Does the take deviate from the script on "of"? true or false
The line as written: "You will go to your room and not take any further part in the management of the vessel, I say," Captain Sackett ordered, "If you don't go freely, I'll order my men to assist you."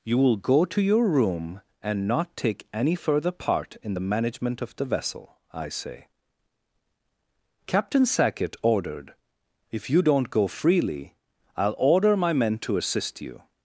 false